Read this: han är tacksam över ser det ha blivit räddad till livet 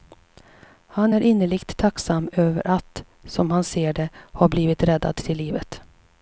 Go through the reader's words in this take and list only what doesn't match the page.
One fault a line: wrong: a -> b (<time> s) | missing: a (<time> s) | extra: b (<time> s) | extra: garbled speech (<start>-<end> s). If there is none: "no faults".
extra: innerligt (1.2 s)
extra: att som han (2.7 s)